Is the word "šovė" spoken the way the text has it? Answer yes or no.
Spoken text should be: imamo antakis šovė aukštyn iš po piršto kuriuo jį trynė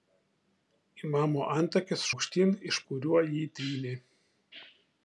no